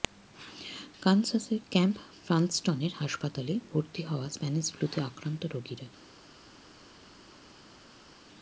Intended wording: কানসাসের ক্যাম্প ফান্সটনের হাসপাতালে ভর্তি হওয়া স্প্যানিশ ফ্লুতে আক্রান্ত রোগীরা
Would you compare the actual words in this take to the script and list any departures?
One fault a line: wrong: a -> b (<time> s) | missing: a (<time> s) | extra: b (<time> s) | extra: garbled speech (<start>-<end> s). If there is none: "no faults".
no faults